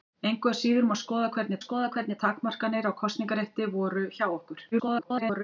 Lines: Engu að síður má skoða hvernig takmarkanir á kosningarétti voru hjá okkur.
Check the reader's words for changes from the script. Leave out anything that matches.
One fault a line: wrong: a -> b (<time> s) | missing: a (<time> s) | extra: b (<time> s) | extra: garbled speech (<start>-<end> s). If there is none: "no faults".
extra: skoða hvernig (1.6 s)
extra: garbled speech (4.7-5.4 s)